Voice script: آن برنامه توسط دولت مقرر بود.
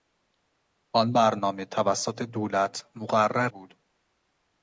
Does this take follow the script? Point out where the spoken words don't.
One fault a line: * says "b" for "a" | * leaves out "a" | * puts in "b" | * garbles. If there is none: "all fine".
all fine